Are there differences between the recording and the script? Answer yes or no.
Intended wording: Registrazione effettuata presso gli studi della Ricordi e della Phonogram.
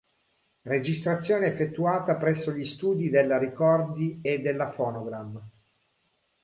no